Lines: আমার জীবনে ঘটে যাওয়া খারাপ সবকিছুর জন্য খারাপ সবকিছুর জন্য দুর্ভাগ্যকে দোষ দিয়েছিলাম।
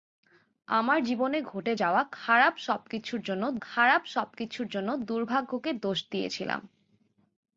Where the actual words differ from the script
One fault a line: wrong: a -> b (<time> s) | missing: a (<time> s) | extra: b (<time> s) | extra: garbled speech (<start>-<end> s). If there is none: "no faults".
no faults